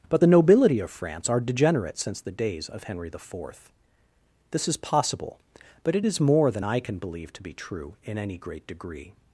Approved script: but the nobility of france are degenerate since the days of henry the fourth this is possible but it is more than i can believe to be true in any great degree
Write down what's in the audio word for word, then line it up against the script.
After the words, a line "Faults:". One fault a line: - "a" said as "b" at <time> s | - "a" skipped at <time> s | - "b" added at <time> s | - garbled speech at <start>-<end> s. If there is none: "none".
but the nobility of france are degenerate since the days of henry the fourth this is possible but it is more than i can believe to be true in any great degree
Faults:
none